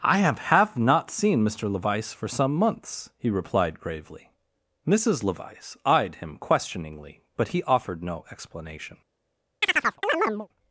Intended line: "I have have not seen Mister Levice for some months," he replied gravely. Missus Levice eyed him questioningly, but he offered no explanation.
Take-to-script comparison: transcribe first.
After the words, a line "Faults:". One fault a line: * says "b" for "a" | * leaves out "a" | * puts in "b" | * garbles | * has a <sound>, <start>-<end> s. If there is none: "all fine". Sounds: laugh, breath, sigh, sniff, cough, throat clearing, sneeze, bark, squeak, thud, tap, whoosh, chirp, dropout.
"I have have not seen Mister Levice for some months," he replied gravely. Missus Levice eyed him questioningly, but he offered no explanation.
Faults:
* has a chirp, 9.6-10.5 s